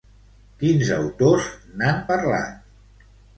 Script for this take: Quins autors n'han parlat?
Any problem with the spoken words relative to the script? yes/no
no